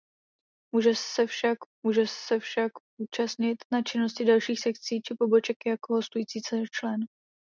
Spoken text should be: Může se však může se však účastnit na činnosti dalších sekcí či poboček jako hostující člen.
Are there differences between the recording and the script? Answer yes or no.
no